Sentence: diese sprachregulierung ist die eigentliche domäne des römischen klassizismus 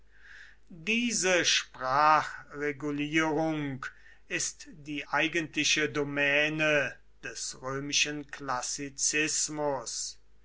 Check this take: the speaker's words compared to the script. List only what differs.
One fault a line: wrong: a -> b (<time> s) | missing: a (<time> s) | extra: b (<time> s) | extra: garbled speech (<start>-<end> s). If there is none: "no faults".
no faults